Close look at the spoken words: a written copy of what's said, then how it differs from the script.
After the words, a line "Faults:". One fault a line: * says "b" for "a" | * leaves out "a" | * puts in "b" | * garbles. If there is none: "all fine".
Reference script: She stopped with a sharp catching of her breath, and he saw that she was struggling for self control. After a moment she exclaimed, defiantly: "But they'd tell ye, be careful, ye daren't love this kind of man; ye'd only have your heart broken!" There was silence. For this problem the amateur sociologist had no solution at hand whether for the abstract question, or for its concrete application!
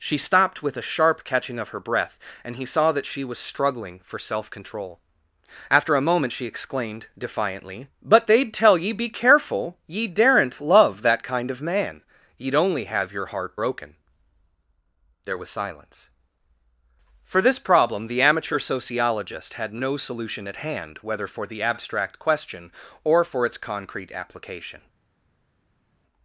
She stopped with a sharp catching of her breath, and he saw that she was struggling for self control. After a moment she exclaimed, defiantly: "But they'd tell ye, be careful, ye daren't love that kind of man; ye'd only have your heart broken!" There was silence. For this problem the amateur sociologist had no solution at hand whether for the abstract question, or for its concrete application!
Faults:
* says "that" for "this"